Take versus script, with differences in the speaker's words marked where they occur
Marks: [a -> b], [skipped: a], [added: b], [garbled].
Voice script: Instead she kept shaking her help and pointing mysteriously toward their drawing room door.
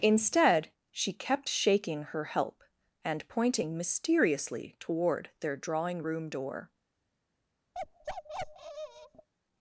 Instead she kept shaking her help and pointing mysteriously toward their drawing room door.